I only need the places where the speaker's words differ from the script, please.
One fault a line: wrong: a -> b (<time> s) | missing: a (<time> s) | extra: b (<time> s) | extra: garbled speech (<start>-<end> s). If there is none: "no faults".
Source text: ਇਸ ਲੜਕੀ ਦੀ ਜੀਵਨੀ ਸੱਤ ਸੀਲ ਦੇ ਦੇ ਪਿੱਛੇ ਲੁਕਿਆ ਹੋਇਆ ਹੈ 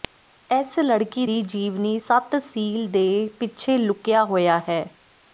missing: ਦੇ (3.3 s)